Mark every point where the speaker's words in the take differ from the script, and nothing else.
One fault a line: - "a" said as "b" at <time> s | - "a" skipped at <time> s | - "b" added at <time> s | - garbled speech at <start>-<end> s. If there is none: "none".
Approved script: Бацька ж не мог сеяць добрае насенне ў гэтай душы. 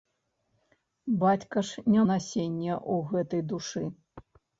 - "мог сеяць добрае" skipped at 2.0 s